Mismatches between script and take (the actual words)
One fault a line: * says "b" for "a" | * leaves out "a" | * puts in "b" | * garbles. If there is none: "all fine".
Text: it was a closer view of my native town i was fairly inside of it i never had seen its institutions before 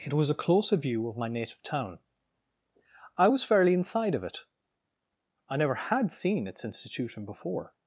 * says "institution" for "institutions"